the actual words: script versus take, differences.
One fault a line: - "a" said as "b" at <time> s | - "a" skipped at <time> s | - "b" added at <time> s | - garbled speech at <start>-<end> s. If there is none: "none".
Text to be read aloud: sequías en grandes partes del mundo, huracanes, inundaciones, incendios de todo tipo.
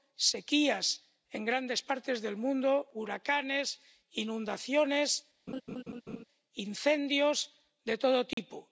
none